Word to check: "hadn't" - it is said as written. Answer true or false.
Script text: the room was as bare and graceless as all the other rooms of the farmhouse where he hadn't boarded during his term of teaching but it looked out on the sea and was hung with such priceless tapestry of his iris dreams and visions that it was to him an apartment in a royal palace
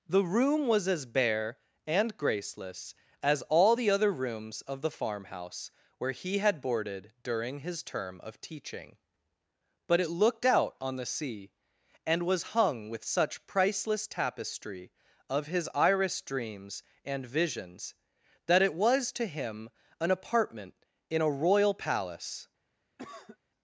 false